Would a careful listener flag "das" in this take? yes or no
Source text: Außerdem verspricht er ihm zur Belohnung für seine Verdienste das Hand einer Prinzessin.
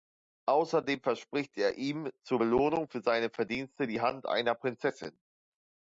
yes